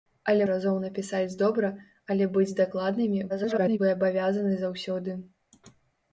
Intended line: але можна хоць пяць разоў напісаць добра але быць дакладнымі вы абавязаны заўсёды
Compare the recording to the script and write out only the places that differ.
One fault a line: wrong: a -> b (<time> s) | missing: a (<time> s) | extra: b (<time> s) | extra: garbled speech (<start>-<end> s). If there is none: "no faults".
missing: можна хоць пяць (0.5 s)
extra: garbled speech (3.3-3.8 s)